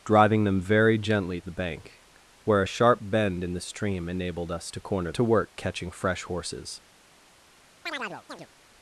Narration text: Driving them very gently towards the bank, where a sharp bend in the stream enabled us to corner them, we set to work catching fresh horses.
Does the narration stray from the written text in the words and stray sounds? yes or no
yes